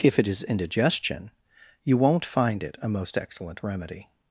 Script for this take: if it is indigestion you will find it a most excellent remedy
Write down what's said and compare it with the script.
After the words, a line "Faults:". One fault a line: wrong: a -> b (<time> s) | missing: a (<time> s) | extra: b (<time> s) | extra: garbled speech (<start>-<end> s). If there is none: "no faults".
if it is indigestion you won't find it a most excellent remedy
Faults:
wrong: will -> won't (2.0 s)